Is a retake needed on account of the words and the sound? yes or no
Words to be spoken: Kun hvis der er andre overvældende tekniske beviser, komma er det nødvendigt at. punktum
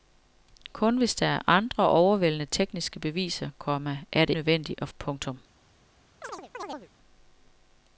yes